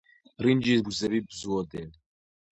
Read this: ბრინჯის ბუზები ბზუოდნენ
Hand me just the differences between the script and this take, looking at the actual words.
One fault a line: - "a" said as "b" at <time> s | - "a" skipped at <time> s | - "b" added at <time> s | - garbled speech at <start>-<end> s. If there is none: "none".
none